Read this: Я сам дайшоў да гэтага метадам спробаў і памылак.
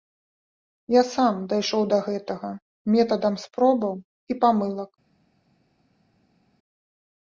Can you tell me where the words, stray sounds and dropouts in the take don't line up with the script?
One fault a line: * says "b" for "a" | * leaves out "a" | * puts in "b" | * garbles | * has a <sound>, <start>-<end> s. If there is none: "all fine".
all fine